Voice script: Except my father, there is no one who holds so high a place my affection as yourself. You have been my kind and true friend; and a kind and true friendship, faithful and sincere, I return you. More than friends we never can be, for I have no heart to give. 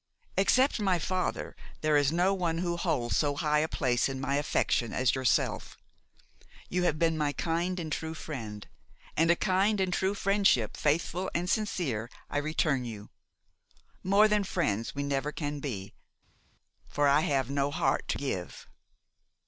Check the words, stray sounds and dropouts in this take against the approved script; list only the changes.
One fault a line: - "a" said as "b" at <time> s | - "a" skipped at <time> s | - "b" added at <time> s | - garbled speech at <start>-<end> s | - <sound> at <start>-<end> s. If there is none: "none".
- "in" added at 4.1 s